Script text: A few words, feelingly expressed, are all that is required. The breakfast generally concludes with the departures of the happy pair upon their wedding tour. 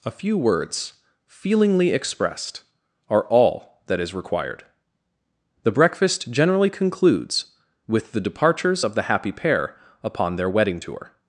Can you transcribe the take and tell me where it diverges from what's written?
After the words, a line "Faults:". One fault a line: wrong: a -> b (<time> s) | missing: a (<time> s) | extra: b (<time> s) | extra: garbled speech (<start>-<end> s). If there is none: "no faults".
A few words, feelingly expressed, are all that is required. The breakfast generally concludes with the departures of the happy pair upon their wedding tour.
Faults:
no faults